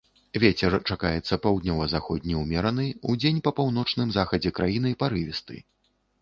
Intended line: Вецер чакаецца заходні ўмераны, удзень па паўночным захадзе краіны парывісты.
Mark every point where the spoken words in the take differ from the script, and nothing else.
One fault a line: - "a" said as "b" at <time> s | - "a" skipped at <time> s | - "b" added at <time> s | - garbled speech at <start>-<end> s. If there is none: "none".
- "паўднёва" added at 1.4 s